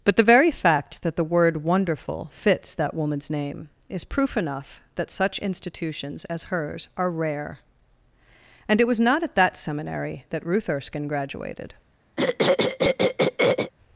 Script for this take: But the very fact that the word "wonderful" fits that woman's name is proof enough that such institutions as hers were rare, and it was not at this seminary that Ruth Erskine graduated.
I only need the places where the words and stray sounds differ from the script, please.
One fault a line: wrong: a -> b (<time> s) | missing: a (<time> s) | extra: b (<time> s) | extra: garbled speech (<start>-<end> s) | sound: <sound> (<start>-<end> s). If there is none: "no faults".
wrong: were -> are (7.0 s)
wrong: this -> that (9.3 s)
sound: throat clearing (12.2-13.7 s)